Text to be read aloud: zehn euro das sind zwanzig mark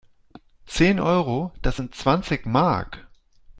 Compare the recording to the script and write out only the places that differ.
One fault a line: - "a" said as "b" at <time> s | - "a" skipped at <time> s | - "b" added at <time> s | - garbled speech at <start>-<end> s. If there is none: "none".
none